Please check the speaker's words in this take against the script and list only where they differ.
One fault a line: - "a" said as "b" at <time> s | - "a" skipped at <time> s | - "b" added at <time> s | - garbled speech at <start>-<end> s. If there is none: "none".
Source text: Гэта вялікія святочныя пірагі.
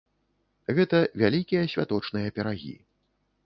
none